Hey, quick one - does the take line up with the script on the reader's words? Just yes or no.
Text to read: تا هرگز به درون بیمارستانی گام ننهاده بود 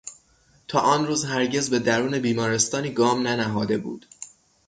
no